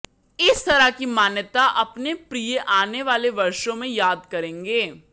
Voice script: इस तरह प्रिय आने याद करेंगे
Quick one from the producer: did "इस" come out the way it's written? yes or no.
yes